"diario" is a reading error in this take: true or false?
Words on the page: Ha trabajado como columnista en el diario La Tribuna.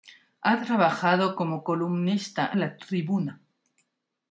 true